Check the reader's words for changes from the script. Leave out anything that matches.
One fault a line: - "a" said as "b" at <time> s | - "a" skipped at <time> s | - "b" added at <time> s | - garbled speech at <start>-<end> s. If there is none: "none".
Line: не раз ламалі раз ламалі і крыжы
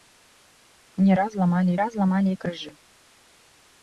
none